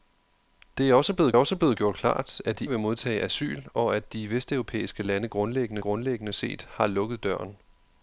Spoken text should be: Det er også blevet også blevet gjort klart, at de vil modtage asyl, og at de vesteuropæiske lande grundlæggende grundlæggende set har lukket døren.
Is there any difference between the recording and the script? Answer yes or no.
no